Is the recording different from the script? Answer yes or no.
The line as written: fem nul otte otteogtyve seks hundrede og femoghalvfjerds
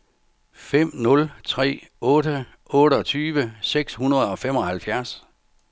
yes